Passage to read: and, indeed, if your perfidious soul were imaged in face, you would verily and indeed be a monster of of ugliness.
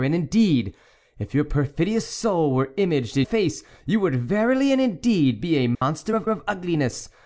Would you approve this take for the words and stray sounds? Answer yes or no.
no